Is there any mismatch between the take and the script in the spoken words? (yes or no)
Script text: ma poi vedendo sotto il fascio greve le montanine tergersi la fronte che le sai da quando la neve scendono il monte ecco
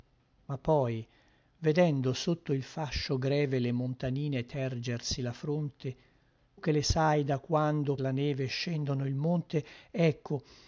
no